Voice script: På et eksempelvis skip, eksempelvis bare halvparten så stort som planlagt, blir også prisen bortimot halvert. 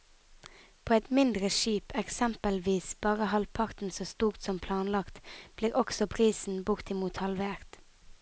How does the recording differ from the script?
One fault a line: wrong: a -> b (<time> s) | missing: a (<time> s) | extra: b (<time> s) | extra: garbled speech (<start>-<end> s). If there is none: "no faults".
wrong: eksempelvis -> mindre (1.2 s)